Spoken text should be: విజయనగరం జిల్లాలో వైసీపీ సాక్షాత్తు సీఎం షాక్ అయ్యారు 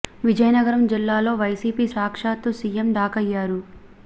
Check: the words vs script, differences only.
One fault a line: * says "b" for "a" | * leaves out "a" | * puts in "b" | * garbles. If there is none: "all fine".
all fine